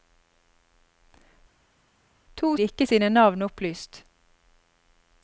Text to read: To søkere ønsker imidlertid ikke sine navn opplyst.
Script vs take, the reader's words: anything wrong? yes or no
yes